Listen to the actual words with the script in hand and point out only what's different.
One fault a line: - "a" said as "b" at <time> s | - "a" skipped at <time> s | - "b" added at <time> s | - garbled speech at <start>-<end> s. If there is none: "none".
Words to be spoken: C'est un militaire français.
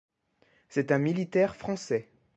none